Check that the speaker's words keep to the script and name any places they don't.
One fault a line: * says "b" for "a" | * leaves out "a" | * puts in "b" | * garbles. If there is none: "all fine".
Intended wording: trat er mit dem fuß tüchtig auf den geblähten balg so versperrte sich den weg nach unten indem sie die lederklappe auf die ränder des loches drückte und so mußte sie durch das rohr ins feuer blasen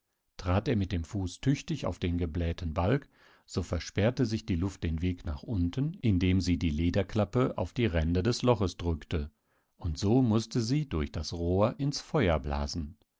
* puts in "die luft"